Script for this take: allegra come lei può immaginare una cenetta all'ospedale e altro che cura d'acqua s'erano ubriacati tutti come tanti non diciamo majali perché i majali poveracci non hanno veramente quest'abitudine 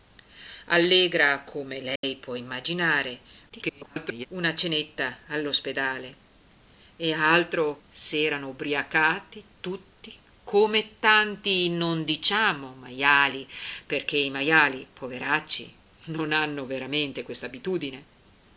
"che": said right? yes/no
no